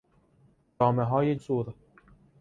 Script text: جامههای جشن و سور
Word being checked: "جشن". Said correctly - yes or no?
no